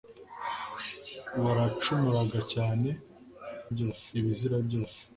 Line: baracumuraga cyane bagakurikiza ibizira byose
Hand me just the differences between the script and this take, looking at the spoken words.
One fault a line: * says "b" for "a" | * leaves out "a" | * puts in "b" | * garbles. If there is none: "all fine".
* says "byose" for "bagakurikiza"